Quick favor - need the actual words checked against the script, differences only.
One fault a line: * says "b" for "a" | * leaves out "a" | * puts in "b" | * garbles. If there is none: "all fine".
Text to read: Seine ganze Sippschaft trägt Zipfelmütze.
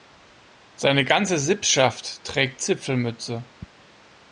all fine